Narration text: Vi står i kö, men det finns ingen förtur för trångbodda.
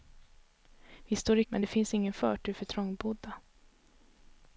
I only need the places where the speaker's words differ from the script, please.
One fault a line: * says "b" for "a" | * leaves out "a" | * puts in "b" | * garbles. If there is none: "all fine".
* leaves out "kö"